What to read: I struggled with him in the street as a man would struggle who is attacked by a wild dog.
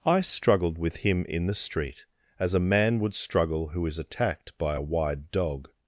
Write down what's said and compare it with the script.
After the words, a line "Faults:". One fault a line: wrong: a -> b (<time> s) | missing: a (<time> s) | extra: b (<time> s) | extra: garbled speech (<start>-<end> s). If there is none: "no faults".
I struggled with him in the street as a man would struggle who is attacked by a wide dog.
Faults:
wrong: wild -> wide (4.8 s)